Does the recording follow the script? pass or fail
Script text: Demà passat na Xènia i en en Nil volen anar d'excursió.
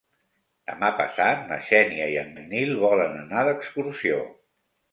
pass